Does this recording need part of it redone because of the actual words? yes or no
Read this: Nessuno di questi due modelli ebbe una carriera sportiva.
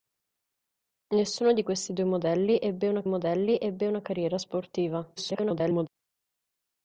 yes